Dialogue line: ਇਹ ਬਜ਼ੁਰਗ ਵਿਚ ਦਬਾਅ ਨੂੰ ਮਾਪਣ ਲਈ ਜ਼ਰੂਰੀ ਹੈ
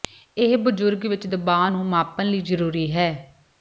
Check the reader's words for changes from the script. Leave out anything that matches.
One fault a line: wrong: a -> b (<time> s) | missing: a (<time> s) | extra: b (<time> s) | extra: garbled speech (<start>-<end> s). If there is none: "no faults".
no faults